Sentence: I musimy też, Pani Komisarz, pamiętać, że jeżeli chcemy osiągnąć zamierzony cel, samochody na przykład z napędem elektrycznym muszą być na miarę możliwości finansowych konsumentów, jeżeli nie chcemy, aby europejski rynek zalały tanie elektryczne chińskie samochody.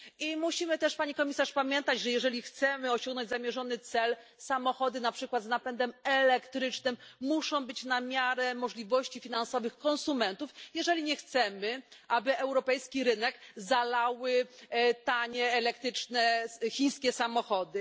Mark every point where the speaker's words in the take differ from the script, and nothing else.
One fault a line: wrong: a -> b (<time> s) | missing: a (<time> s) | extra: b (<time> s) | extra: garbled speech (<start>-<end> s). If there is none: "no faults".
no faults